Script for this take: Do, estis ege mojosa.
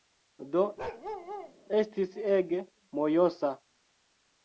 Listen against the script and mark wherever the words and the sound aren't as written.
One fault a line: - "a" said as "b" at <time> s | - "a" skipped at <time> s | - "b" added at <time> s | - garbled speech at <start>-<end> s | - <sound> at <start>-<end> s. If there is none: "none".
- bark at 0.8-1.5 s